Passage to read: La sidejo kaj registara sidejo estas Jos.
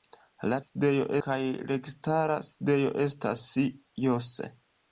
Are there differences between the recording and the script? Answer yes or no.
no